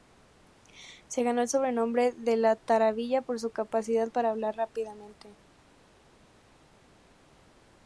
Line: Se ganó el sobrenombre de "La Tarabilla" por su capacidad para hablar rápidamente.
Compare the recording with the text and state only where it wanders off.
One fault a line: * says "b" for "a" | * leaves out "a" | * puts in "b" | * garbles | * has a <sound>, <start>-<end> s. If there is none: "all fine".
all fine